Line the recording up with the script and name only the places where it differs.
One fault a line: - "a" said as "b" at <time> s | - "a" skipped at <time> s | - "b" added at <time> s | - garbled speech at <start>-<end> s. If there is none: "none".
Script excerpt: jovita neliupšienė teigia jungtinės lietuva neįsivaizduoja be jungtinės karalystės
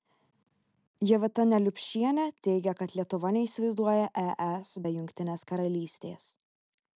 - "jungtinės" said as "kad" at 2.8 s
- "es" added at 4.5 s